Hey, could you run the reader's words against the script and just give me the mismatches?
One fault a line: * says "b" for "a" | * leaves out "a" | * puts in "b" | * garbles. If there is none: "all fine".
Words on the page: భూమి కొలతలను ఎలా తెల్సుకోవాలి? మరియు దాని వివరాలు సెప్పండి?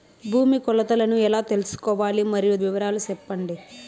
* leaves out "దాని"